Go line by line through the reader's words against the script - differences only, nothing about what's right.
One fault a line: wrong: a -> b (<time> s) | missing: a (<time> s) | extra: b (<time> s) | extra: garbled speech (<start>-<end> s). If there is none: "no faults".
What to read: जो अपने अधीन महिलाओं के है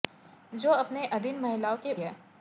no faults